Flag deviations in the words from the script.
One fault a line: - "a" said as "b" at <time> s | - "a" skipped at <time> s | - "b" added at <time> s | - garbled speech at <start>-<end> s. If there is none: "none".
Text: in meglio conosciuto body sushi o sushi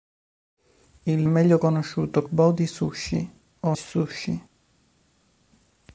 none